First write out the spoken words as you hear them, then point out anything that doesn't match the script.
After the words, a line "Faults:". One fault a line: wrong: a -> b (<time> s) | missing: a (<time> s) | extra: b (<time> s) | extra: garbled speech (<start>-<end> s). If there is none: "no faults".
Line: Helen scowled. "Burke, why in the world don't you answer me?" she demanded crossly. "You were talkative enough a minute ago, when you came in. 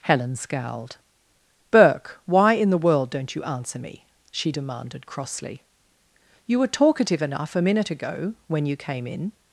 Helen scowled. "Burke, why in the world don't you answer me?" she demanded crossly. "You were talkative enough a minute ago, when you came in.
Faults:
no faults